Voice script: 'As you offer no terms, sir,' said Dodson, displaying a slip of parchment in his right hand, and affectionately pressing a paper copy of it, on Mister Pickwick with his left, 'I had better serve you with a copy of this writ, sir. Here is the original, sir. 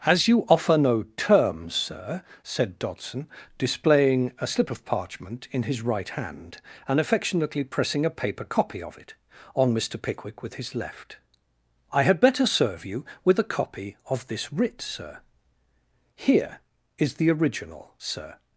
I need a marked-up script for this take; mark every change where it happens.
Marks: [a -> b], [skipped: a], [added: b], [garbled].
'As you offer no terms, sir,' said Dodson, displaying a slip of parchment in his right hand, and affectionately pressing a paper copy of it, on Mister Pickwick with his left, 'I had better serve you with a copy of this writ, sir. Here is the original, sir.